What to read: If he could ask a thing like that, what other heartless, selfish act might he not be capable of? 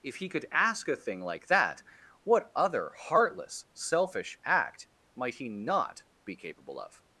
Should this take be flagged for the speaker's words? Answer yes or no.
no